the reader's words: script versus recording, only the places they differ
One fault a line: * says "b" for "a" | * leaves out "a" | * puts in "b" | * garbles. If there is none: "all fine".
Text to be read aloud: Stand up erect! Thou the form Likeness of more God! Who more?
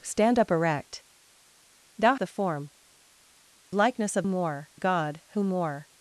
all fine